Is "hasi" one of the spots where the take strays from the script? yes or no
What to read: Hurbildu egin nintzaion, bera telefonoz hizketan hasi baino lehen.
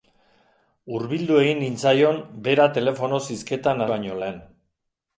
yes